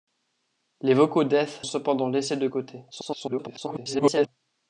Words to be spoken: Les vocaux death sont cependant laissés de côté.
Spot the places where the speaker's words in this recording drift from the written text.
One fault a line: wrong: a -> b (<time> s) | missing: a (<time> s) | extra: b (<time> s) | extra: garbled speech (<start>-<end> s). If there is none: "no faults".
missing: sont (1.6 s)
extra: garbled speech (2.9-4.3 s)